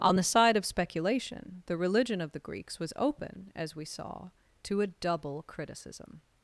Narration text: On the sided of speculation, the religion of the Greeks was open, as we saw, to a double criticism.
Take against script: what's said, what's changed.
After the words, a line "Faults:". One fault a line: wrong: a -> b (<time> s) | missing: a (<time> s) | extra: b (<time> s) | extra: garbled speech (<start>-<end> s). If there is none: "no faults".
On the side of speculation, the religion of the Greeks was open, as we saw, to a double criticism.
Faults:
wrong: sided -> side (0.2 s)